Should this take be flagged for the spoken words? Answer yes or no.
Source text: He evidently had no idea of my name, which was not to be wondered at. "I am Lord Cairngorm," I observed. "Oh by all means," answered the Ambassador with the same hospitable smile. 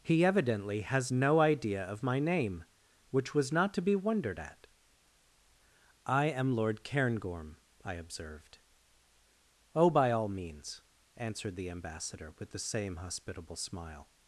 yes